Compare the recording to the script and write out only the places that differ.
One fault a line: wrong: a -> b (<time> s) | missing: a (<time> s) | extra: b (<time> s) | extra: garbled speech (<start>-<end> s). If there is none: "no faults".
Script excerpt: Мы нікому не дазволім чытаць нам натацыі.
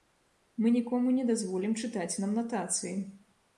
no faults